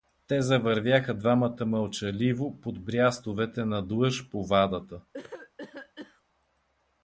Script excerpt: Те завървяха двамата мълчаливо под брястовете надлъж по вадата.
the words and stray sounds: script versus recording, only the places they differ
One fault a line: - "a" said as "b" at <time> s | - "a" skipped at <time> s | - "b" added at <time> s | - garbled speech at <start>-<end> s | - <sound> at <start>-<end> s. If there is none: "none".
- cough at 5.1-6.2 s